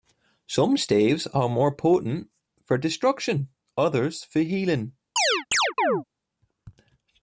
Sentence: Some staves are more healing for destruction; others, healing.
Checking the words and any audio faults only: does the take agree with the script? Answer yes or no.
no